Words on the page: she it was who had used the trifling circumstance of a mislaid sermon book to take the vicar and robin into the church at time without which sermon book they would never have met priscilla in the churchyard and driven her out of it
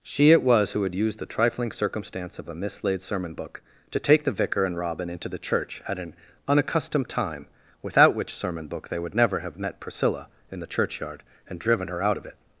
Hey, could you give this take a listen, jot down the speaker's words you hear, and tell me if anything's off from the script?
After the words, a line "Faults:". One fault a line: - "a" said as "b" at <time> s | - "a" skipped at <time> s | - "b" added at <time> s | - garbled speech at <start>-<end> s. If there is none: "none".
she it was who had used the trifling circumstance of a mislaid sermon book to take the vicar and robin into the church at an unaccustomed time without which sermon book they would never have met priscilla in the churchyard and driven her out of it
Faults:
- "an unaccustomed" added at 6.0 s